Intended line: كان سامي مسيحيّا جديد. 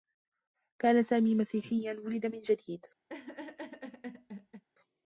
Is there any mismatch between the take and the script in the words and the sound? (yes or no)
yes